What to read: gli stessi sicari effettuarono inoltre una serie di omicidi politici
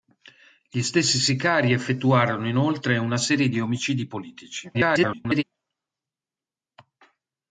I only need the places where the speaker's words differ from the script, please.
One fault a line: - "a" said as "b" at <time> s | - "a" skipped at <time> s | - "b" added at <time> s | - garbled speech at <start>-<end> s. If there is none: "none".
- garbled speech at 4.7-5.4 s